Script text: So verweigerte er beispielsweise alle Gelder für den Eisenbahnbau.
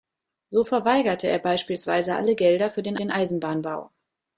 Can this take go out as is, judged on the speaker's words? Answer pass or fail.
fail